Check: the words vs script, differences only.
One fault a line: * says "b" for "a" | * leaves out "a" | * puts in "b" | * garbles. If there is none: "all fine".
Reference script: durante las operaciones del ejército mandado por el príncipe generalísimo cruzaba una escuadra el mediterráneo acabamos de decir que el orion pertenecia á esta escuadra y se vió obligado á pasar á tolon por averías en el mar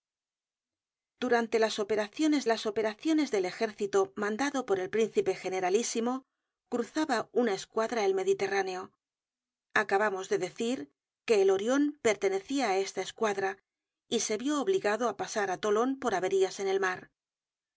* puts in "las operaciones"